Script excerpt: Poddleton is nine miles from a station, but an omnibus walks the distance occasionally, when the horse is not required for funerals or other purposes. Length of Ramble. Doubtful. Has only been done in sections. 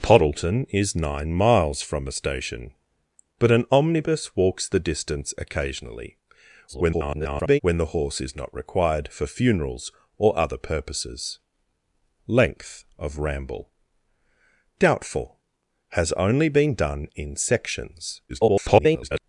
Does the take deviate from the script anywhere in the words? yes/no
yes